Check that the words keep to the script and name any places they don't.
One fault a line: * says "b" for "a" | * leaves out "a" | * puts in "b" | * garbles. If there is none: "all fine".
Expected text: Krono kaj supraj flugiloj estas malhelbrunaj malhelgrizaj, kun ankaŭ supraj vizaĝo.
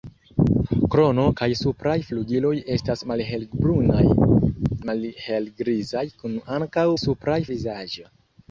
all fine